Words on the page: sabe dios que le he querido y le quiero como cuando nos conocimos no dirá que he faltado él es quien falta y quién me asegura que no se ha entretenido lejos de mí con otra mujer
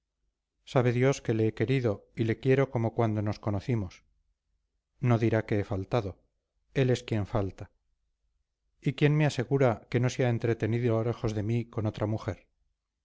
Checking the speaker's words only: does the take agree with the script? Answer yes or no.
yes